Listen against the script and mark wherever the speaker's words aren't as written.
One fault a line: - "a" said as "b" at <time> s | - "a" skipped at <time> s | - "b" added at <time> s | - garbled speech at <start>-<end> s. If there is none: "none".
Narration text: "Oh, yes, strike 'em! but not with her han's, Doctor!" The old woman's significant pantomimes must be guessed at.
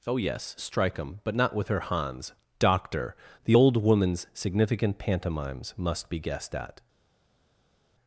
none